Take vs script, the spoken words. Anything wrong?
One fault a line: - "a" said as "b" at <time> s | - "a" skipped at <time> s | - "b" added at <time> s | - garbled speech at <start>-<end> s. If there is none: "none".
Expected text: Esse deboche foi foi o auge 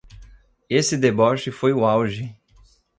- "foi" skipped at 1.7 s